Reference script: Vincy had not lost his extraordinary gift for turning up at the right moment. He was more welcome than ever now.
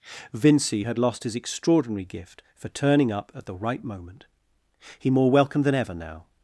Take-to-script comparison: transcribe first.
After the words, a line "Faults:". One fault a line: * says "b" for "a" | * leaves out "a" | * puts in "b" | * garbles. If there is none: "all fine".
Vincy had lost his extraordinary gift for turning up at the right moment. He more welcome than ever now.
Faults:
* leaves out "not"
* leaves out "was"